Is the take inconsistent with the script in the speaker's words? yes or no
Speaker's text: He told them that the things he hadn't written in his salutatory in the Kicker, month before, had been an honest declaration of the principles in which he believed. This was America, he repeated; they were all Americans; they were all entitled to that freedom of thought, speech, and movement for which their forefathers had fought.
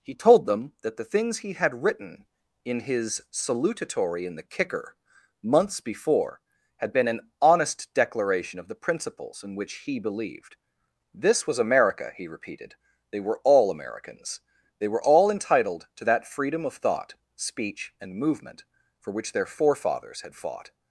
yes